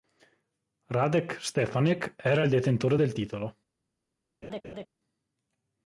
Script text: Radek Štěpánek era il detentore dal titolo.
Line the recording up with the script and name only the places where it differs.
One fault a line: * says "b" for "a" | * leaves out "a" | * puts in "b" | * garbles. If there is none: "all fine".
* says "del" for "dal"